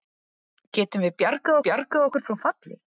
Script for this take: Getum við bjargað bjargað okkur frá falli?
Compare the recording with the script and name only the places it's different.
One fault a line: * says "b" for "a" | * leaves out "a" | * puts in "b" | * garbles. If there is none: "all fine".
all fine